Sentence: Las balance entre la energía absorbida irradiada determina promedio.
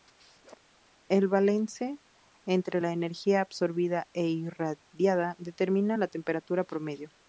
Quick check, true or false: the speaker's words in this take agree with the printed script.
false